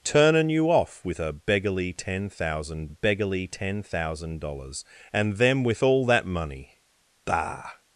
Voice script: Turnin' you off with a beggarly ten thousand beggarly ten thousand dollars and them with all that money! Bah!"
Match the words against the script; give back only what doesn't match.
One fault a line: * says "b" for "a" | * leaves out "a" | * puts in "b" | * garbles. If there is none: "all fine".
all fine